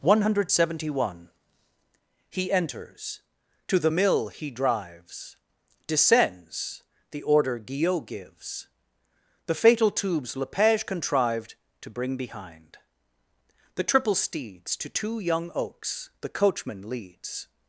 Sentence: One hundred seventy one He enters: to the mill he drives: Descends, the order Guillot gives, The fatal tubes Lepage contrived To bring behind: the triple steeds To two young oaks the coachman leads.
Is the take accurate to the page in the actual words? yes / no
yes